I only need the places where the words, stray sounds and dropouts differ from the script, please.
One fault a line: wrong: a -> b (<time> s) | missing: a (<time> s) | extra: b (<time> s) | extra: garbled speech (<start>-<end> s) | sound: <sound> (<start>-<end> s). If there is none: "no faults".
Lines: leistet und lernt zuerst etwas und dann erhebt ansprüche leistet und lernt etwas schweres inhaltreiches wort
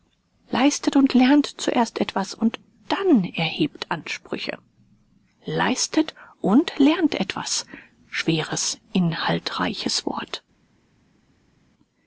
no faults